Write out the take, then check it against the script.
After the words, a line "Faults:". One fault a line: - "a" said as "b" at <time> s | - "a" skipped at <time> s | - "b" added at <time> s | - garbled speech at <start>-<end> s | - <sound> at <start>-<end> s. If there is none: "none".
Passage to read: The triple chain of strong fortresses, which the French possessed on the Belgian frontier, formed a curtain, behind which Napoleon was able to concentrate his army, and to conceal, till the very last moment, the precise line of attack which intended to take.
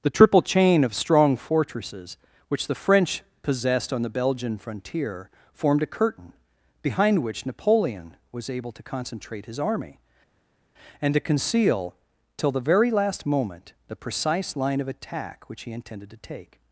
The triple chain of strong fortresses, which the French possessed on the Belgian frontier, formed a curtain, behind which Napoleon was able to concentrate his army, and to conceal, till the very last moment, the precise line of attack which he intended to take.
Faults:
- "he" added at 15.6 s